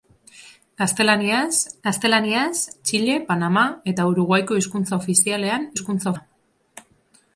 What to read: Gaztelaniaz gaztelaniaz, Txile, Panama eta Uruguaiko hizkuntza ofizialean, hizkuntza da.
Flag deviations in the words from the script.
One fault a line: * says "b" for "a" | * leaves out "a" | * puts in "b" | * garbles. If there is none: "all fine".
all fine